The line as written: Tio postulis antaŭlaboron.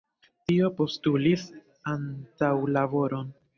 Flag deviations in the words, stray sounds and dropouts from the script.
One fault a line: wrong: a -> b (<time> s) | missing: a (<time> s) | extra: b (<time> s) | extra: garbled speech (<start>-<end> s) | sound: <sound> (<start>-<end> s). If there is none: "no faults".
no faults